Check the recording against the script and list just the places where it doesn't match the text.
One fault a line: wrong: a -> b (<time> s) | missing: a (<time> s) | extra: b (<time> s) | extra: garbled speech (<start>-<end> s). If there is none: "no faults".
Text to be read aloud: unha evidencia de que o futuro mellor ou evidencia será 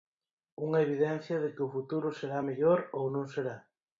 extra: será (2.2 s)
wrong: evidencia -> non (3.1 s)